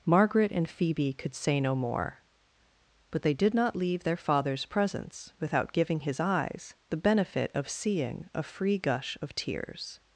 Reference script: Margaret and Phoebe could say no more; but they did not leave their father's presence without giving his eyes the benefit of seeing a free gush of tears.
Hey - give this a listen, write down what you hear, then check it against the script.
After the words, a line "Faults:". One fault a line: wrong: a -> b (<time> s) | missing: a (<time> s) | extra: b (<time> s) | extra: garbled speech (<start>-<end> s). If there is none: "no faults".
Margaret and Phoebe could say no more; but they did not leave their father's presence without giving his eyes the benefit of seeing a free gush of tears.
Faults:
no faults